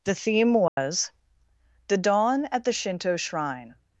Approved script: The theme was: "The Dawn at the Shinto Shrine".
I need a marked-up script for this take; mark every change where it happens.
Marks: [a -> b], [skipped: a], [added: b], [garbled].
The theme was: "The Dawn at the Shinto Shrine".